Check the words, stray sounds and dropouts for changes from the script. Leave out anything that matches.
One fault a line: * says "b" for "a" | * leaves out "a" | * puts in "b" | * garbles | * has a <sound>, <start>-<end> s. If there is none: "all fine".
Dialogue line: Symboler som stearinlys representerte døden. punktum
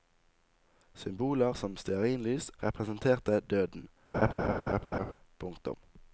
* has a laugh, 4.1-5.1 s